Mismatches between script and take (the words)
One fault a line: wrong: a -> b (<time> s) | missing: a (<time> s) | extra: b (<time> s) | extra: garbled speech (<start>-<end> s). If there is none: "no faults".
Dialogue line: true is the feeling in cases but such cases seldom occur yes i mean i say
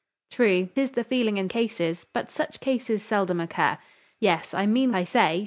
no faults